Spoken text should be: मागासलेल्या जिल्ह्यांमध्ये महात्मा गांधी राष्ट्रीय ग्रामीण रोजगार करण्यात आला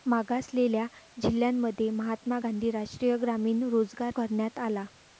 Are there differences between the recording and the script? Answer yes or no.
no